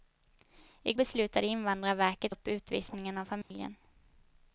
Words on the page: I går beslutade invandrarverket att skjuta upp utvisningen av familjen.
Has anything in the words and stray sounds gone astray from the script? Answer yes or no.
yes